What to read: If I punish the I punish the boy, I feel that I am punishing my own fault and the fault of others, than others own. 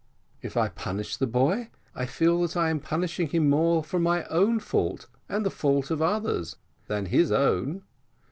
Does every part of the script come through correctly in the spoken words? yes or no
no